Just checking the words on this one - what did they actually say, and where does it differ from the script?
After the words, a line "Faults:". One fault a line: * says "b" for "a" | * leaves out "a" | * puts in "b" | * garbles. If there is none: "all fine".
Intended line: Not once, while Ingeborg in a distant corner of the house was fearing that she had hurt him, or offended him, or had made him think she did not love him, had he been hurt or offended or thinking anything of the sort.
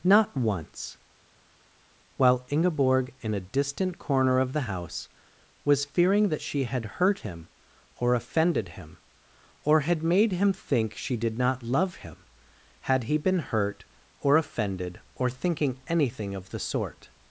Not once, while Ingeborg in a distant corner of the house was fearing that she had hurt him, or offended him, or had made him think she did not love him, had he been hurt or offended or thinking anything of the sort.
Faults:
all fine